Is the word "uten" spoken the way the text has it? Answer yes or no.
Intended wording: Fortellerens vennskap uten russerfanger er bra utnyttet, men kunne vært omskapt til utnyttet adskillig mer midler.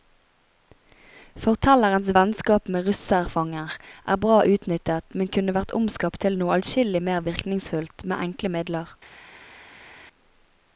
no